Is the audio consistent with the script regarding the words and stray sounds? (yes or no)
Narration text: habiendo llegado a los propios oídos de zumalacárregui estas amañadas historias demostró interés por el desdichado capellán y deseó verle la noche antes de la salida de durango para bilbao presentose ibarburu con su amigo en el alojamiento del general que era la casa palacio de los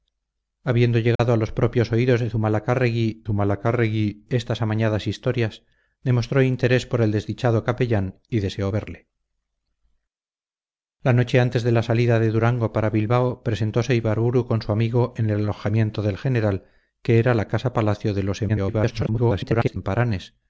no